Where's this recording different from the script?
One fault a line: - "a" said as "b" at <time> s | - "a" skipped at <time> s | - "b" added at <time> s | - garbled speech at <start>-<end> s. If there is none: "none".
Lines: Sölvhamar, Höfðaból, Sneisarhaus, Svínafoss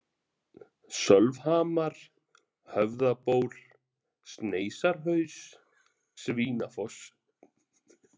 none